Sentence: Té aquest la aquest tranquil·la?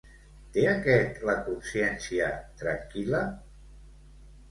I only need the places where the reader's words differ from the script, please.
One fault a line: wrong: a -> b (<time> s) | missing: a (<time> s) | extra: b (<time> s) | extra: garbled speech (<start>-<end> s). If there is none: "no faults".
wrong: aquest -> consciència (1.5 s)